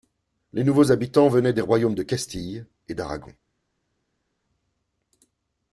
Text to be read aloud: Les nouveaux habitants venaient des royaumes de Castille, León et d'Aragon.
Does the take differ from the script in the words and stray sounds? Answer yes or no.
yes